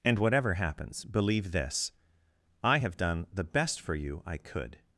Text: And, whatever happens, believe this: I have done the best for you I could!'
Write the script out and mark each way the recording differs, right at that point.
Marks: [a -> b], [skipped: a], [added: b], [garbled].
And, whatever happens, believe this: I have done the best for you I could!'